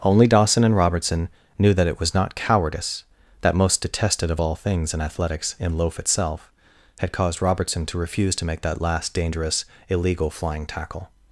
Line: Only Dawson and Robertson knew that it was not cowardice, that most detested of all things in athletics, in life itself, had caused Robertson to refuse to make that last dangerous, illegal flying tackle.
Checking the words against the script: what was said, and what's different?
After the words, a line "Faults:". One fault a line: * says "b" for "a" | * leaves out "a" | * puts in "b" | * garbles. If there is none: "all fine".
Only Dawson and Robertson knew that it was not cowardice, that most detested of all things in athletics, in loaf itself, had caused Robertson to refuse to make that last dangerous, illegal flying tackle.
Faults:
* says "loaf" for "life"